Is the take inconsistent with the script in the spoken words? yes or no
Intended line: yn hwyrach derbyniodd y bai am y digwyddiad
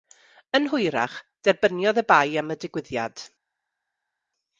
no